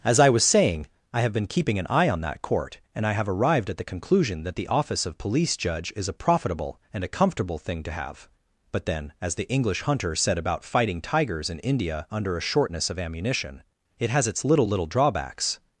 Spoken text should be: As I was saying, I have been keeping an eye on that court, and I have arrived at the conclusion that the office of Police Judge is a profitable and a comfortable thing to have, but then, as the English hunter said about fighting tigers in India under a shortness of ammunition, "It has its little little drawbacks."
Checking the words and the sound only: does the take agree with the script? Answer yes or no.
yes